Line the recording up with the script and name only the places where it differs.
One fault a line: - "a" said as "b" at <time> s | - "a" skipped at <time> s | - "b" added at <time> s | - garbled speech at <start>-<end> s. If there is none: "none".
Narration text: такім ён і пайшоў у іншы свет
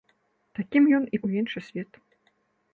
- "пайшоў" skipped at 1.2 s